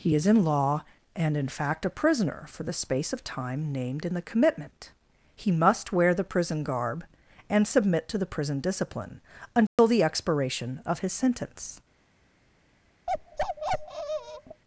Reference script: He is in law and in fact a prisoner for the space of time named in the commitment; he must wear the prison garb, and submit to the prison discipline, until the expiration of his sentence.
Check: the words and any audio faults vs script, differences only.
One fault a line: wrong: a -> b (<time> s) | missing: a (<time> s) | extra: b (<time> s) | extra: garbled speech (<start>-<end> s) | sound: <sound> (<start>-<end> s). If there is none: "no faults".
sound: dropout (9.7-9.8 s)
sound: bark (13.1-14.6 s)